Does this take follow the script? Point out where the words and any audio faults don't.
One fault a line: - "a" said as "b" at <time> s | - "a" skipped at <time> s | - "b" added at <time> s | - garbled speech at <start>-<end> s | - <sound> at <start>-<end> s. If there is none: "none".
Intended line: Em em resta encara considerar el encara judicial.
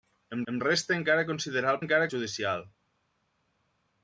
none